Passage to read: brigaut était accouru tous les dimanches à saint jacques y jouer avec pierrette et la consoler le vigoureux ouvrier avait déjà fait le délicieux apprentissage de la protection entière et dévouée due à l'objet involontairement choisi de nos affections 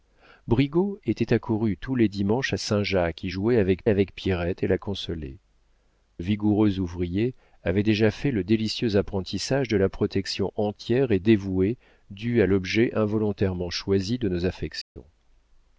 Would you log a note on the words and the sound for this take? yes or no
yes